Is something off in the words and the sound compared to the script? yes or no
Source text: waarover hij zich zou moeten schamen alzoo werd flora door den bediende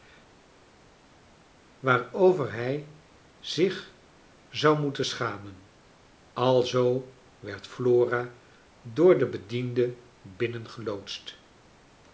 no